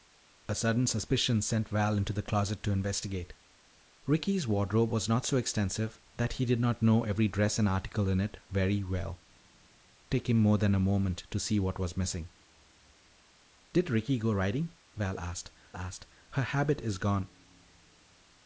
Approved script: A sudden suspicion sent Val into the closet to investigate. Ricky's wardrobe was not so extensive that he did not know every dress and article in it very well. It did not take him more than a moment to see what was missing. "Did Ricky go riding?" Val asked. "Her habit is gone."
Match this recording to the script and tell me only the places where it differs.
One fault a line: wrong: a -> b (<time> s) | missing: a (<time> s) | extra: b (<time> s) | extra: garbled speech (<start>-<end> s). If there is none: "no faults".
missing: It did not (9.2 s)
extra: asked (15.8 s)